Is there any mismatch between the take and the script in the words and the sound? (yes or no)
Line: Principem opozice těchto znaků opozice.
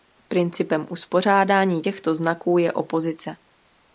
yes